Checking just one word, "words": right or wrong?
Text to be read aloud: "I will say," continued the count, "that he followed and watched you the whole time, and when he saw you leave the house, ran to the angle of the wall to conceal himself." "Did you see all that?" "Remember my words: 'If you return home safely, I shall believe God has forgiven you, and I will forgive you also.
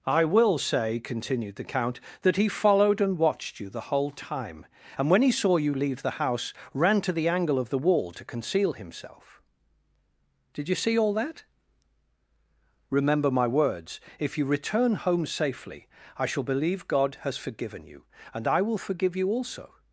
right